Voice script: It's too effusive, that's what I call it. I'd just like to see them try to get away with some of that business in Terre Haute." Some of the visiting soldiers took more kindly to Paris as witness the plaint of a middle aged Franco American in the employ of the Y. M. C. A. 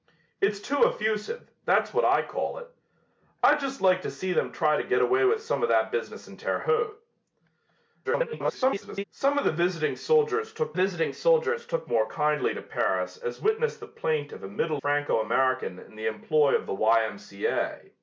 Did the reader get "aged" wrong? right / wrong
wrong